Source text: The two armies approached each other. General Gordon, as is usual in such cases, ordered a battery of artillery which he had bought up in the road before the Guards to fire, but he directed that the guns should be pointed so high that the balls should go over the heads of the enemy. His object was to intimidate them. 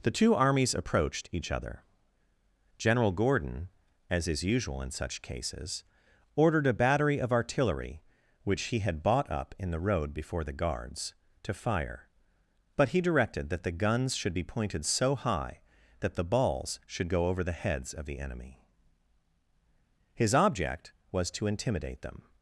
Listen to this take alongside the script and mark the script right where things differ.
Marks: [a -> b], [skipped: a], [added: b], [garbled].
The two armies approached each other. General Gordon, as is usual in such cases, ordered a battery of artillery which he had bought up in the road before the Guards to fire, but he directed that the guns should be pointed so high that the balls should go over the heads of the enemy. His object was to intimidate them.